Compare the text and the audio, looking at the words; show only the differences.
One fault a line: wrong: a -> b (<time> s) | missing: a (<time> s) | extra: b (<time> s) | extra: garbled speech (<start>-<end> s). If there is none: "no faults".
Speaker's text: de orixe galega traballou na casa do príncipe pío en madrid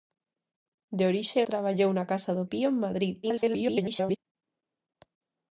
missing: galega (1.4 s)
missing: príncipe (2.4 s)
extra: garbled speech (3.2-4.2 s)